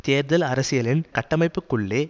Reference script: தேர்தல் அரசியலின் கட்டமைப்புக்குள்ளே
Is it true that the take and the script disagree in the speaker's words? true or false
false